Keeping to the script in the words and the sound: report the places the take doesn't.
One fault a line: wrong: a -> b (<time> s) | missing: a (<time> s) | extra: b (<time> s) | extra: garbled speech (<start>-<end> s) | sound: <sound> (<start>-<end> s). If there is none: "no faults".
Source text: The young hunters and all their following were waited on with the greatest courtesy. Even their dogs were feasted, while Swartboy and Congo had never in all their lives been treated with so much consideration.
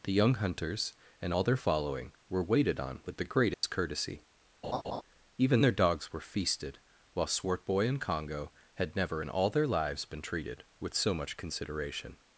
sound: dropout (3.5-3.6 s)
sound: laugh (4.6-5.0 s)